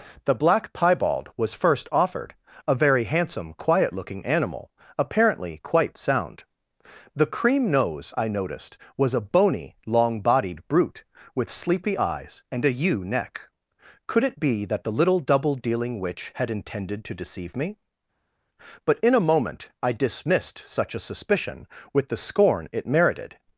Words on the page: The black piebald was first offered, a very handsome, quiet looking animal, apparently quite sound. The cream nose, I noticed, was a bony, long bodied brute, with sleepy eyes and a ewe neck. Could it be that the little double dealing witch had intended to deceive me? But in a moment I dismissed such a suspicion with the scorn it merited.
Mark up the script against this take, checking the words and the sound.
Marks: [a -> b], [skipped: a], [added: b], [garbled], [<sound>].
The black piebald was first offered, a very handsome, quiet looking animal, apparently quite sound. The cream nose, I noticed, was a bony, long bodied brute, with sleepy eyes and a ewe neck. Could it be that the little double dealing witch had intended to deceive me? But in a moment I dismissed such a suspicion with the scorn it merited.